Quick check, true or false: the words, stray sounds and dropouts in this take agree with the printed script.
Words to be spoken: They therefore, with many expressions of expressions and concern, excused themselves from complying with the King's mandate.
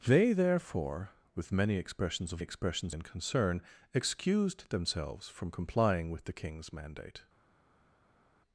true